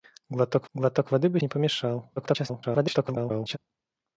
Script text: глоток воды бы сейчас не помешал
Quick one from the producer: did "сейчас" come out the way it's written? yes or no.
no